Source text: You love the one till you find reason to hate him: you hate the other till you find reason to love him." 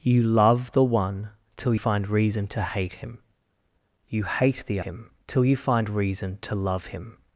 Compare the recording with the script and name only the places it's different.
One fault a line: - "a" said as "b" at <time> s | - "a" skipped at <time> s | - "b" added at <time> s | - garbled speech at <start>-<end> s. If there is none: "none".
- "you" skipped at 1.8 s
- "other" said as "him" at 4.8 s